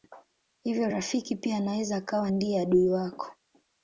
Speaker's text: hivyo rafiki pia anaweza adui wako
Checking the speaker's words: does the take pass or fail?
fail